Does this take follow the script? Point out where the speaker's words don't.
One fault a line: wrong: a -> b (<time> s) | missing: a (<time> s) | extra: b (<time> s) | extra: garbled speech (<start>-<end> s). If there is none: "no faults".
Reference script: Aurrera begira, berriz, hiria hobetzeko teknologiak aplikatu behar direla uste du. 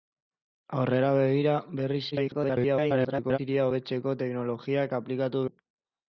extra: garbled speech (2.1-3.4 s)
missing: behar direla uste (5.5 s)